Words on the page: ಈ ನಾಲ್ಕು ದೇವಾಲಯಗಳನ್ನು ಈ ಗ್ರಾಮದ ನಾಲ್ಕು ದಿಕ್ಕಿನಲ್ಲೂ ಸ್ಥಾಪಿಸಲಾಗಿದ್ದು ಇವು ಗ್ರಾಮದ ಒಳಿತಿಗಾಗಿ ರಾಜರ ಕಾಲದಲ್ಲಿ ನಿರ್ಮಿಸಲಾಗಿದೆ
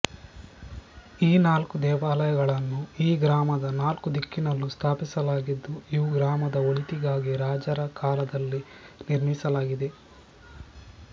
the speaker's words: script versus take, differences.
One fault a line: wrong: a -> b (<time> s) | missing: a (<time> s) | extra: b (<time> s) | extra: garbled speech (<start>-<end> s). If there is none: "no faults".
no faults